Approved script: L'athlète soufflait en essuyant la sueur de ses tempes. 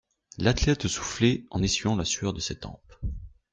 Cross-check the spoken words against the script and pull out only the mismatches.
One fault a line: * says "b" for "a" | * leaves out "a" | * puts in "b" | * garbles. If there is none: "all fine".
all fine